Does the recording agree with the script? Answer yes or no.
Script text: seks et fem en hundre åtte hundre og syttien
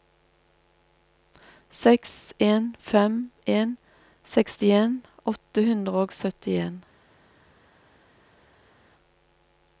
no